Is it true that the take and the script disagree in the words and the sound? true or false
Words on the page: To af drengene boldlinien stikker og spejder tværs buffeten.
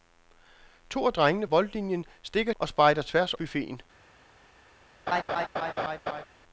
true